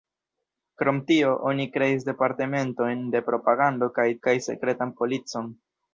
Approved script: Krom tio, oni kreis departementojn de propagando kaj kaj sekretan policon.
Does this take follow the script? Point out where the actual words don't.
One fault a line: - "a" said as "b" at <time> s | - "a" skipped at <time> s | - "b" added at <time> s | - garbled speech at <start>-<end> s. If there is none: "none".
none